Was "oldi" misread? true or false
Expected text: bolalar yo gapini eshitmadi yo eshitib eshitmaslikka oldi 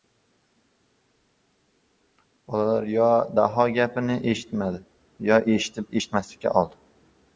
false